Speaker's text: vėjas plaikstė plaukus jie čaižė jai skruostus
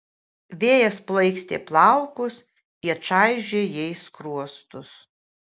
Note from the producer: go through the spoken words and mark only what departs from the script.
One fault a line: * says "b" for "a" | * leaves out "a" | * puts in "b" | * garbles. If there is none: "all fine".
all fine